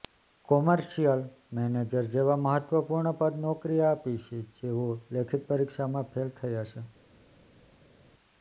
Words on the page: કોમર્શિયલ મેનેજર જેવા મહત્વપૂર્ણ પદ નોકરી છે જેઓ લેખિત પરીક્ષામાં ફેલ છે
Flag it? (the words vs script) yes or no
yes